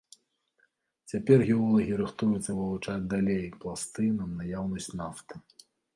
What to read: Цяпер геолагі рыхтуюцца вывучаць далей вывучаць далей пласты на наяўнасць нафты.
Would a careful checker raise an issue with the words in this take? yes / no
yes